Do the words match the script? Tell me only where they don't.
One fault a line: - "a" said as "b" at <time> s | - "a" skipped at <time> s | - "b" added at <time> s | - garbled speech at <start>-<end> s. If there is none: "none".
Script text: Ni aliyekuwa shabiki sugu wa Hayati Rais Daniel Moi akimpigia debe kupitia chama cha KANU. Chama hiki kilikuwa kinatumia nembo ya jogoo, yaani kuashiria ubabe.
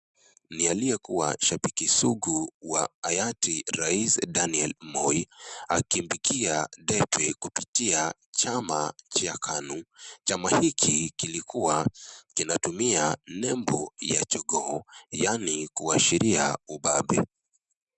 none